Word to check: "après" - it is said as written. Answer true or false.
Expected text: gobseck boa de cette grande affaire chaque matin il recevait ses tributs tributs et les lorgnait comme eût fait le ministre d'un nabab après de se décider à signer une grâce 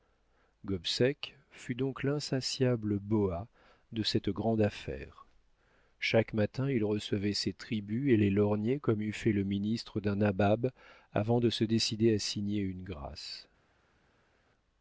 false